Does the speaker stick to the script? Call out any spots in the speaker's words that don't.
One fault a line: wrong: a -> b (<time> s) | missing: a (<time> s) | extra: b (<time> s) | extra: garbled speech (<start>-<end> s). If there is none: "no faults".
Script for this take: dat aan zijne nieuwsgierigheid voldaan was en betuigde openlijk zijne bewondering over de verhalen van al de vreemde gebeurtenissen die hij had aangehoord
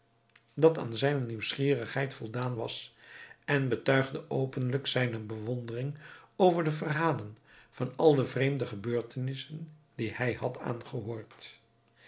no faults